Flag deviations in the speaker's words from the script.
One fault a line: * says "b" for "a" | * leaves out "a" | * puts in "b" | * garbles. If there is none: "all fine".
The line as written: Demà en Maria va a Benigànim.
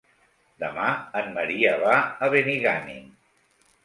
all fine